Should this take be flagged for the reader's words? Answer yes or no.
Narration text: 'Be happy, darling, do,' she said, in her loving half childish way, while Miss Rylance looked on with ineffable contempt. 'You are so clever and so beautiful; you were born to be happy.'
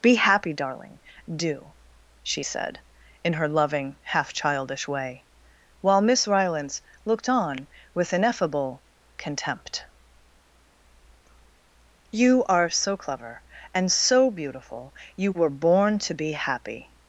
no